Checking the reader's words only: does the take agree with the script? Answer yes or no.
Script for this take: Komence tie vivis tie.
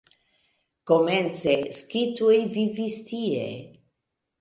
no